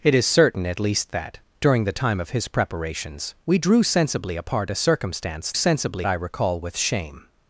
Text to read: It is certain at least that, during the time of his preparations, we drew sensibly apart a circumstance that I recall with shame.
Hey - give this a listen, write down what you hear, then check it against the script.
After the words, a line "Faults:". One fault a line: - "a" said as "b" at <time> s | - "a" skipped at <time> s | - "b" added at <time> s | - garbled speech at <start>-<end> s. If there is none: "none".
It is certain at least that, during the time of his preparations, we drew sensibly apart a circumstance sensibly I recall with shame.
Faults:
- "that" said as "sensibly" at 5.5 s